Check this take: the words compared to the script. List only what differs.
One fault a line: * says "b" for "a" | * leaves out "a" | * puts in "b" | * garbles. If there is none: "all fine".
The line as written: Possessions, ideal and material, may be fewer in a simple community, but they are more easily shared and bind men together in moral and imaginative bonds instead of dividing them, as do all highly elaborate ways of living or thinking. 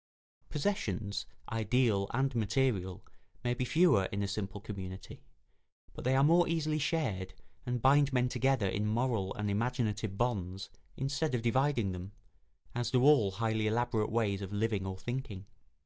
all fine